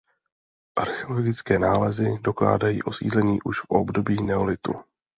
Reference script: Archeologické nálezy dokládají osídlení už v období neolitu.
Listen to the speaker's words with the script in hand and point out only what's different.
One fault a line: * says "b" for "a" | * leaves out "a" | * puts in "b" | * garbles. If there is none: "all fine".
all fine